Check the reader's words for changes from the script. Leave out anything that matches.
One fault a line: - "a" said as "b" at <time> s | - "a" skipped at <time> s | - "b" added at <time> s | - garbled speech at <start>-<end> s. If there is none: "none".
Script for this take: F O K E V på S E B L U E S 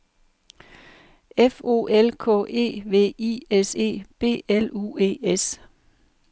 - "L" added at 1.8 s
- "på" said as "I" at 3.2 s